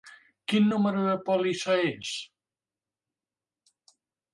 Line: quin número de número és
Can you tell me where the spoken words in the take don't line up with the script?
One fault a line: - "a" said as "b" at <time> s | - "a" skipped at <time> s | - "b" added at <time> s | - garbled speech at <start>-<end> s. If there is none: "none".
- "número" said as "pòlissa" at 1.3 s